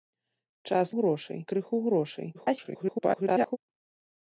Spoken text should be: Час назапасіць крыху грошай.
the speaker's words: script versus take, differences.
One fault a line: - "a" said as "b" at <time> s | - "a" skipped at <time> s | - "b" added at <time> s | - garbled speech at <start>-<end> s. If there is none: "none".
- "назапасіць" said as "грошай" at 1.0 s
- garbled speech at 2.3-3.6 s